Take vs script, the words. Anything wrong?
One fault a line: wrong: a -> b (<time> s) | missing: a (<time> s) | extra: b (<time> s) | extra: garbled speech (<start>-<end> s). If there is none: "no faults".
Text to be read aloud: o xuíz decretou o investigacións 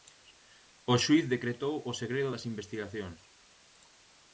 extra: segredo das (2.0 s)